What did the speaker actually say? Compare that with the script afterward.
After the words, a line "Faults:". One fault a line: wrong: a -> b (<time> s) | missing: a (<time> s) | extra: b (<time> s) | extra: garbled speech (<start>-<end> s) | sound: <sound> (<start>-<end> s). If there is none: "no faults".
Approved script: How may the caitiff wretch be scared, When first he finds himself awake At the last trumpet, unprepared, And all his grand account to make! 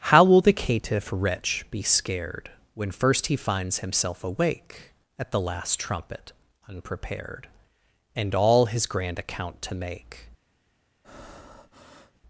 How will the caitiff wretch be scared, When first he finds himself awake At the last trumpet, unprepared, And all his grand account to make!
Faults:
wrong: may -> will (0.2 s)
sound: breath (11.0-12.2 s)